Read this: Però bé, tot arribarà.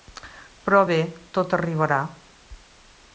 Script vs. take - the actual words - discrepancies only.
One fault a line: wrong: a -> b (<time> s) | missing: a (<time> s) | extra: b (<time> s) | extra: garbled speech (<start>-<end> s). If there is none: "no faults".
no faults